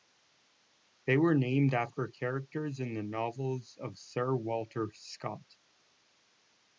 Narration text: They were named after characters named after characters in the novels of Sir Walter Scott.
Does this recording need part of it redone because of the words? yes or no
yes